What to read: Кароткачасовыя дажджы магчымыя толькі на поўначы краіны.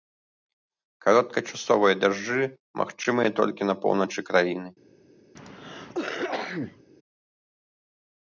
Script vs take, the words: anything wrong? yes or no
no